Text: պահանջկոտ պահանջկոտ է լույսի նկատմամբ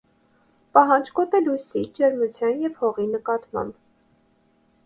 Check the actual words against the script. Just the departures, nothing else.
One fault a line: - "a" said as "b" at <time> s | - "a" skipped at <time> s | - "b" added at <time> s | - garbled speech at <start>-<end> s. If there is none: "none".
- "պահանջկոտ" skipped at 1.4 s
- "ջերմության և հողի" added at 2.0 s